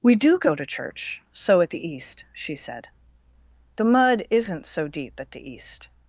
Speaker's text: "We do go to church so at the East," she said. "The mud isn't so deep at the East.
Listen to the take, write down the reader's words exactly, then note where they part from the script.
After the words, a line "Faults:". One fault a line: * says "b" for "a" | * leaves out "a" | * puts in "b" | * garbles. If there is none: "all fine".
"We do go to church so at the East," she said. "The mud isn't so deep at the East.
Faults:
all fine